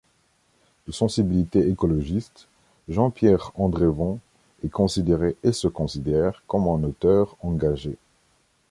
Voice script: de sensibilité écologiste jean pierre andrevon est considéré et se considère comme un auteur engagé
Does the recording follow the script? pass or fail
pass